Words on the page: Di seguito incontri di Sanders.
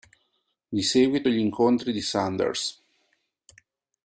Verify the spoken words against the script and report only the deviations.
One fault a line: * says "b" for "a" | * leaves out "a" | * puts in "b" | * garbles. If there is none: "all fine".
* puts in "gli"